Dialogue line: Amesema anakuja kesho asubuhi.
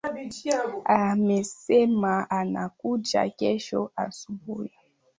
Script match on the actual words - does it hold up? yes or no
yes